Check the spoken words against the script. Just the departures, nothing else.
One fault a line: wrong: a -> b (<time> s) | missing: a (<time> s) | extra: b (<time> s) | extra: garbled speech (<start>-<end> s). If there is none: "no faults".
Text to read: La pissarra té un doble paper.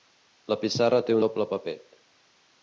missing: un (1.2 s)